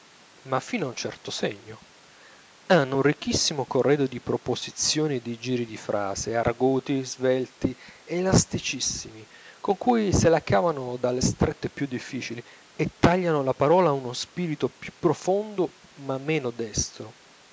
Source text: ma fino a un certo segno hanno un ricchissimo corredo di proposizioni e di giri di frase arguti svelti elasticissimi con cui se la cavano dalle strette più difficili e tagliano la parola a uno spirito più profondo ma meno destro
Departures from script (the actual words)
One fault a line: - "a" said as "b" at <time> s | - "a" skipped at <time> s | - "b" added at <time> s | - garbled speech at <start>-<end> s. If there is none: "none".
none